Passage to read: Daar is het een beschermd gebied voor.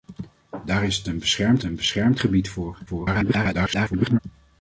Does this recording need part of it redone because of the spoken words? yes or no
yes